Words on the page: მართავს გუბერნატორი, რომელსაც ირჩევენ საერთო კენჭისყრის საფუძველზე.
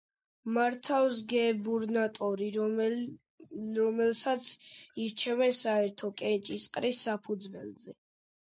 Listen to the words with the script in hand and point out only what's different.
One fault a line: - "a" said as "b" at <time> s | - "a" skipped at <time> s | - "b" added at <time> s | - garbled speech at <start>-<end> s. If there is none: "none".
none